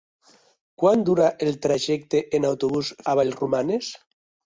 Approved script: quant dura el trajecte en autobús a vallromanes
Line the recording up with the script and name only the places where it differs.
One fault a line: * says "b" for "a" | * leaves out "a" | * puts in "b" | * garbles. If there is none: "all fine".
all fine